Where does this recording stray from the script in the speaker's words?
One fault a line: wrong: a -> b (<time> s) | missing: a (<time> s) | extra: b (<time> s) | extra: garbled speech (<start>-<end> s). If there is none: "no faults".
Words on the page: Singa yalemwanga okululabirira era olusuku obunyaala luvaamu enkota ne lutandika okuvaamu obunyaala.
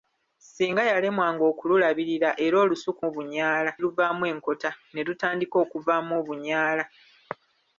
no faults